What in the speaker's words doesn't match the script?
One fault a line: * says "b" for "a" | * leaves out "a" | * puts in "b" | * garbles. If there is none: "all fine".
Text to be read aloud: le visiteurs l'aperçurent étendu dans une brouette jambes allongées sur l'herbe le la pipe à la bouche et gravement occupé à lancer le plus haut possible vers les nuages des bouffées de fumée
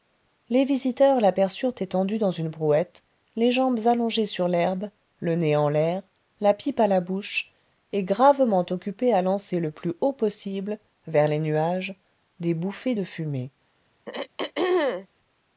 * says "les" for "le"
* puts in "les"
* puts in "nez en l'air"